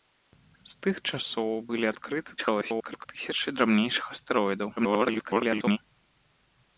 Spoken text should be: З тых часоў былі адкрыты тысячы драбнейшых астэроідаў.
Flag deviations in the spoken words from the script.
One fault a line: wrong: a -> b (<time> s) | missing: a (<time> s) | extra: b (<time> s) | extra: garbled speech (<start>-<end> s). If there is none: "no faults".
extra: garbled speech (2.4-3.1 s)
extra: garbled speech (4.8-5.8 s)